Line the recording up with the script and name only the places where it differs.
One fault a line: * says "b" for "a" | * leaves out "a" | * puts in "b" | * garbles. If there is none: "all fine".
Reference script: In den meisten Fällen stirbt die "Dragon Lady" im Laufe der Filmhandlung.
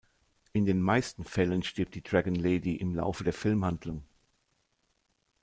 all fine